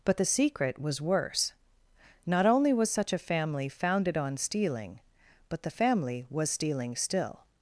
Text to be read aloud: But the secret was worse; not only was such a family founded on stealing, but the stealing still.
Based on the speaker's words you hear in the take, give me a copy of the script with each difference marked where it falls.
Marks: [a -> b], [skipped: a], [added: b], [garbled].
But the secret was worse; not only was such a family founded on stealing, but the [added: family was] stealing still.